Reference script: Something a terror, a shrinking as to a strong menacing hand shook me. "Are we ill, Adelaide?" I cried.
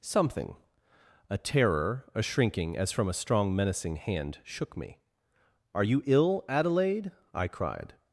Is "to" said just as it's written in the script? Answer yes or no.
no